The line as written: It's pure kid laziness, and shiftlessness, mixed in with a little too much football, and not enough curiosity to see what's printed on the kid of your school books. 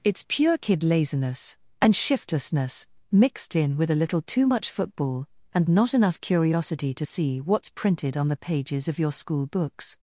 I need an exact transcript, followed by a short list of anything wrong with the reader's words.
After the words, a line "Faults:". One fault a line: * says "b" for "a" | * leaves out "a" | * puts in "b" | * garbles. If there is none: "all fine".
It's pure kid laziness, and shiftlessness, mixed in with a little too much football, and not enough curiosity to see what's printed on the pages of your school books.
Faults:
* says "pages" for "kid"